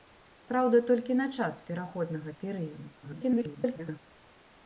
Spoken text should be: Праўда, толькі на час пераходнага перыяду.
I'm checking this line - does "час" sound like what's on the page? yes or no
yes